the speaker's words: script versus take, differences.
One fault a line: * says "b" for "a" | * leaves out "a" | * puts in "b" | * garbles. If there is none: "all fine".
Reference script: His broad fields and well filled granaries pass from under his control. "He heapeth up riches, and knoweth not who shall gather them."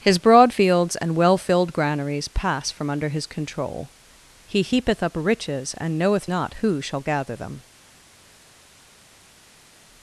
all fine